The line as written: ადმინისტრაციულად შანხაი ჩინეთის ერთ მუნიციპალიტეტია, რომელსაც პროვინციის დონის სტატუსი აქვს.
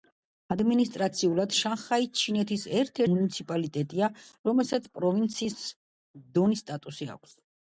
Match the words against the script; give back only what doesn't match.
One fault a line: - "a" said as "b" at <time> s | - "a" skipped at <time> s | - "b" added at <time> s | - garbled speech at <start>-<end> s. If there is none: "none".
none